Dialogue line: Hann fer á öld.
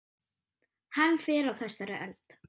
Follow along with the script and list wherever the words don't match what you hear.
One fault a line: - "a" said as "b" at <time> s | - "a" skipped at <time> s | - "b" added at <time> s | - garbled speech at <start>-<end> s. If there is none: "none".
- "þessari" added at 1.6 s